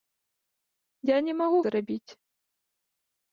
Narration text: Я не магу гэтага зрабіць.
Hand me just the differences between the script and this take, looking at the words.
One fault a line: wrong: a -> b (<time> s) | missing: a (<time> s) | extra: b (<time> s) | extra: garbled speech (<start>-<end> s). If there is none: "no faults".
missing: гэтага (1.6 s)